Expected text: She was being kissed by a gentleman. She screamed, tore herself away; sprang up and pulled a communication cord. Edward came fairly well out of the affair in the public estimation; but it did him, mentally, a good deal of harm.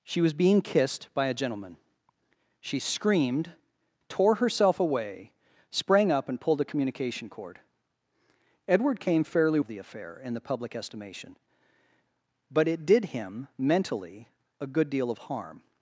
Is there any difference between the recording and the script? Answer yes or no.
yes